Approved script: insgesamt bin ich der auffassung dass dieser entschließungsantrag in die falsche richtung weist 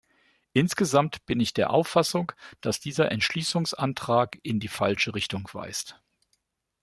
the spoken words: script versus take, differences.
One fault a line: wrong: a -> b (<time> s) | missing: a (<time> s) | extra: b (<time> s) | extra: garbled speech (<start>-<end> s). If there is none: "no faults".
no faults